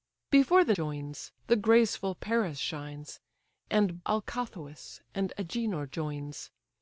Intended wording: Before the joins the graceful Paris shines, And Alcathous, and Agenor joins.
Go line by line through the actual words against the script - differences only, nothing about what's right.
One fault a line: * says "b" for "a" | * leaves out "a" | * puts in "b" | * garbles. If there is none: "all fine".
all fine